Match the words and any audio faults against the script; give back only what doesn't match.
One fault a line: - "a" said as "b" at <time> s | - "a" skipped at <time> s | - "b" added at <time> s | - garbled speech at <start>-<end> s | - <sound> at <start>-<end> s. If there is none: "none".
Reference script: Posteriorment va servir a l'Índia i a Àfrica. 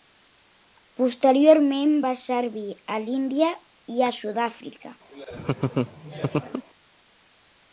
- "Sud" added at 4.2 s
- laugh at 5.1-6.7 s